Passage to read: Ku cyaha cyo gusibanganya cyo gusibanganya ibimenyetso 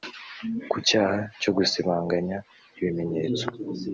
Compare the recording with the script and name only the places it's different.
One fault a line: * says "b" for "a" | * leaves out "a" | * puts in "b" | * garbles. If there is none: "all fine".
* leaves out "cyo gusibanganya"